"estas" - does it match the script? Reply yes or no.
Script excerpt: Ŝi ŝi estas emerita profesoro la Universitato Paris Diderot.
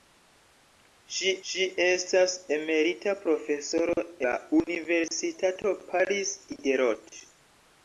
yes